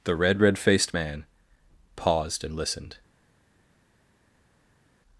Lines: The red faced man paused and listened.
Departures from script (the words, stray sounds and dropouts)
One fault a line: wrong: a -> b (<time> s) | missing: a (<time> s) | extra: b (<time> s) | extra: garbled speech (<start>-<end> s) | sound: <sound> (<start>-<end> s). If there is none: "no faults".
extra: red (0.4 s)